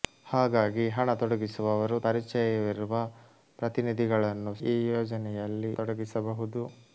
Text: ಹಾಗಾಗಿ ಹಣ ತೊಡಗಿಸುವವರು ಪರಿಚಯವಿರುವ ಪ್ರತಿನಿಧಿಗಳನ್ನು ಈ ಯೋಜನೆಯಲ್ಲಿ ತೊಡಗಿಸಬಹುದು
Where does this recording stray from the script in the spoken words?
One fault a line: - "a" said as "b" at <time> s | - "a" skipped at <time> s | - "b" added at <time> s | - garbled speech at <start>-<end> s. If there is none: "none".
none